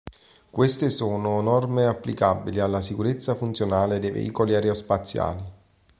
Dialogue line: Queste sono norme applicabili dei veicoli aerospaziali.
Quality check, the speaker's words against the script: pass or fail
fail